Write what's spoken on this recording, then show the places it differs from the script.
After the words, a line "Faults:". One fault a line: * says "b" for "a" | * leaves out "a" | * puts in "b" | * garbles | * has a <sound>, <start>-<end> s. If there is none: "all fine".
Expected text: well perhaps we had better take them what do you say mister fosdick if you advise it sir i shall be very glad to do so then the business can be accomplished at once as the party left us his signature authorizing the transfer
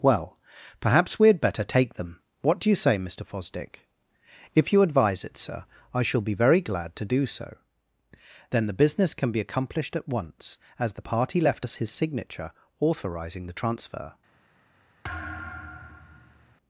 well perhaps we had better take them what do you say mister fosdick if you advise it sir i shall be very glad to do so then the business can be accomplished at once as the party left us his signature authorizing the transfer
Faults:
* has a thud, 15.0-16.6 s